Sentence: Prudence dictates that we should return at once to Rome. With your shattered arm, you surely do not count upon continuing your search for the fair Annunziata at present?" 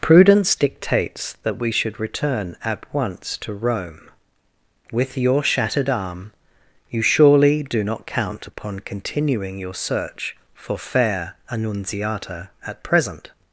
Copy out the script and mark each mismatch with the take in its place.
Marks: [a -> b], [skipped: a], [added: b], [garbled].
Prudence dictates that we should return at once to Rome. With your shattered arm, you surely do not count upon continuing your search for [skipped: the] fair Annunziata at present?"